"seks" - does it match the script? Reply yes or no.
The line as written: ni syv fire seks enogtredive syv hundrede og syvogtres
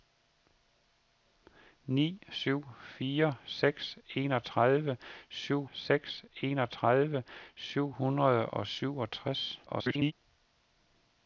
yes